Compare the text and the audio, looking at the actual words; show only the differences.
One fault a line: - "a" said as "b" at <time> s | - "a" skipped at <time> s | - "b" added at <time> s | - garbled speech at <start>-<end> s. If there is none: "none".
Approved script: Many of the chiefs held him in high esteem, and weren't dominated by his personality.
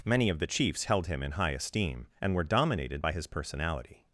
- "weren't" said as "were" at 2.3 s